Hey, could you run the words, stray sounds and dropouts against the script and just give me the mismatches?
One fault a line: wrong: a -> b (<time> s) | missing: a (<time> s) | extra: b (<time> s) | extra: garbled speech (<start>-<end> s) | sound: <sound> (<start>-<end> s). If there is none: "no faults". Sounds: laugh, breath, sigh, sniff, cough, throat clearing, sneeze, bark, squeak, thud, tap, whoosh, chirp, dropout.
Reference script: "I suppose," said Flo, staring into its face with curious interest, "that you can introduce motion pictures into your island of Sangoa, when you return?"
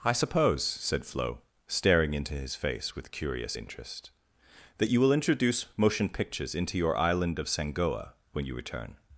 wrong: its -> his (2.3 s)
wrong: can -> will (5.0 s)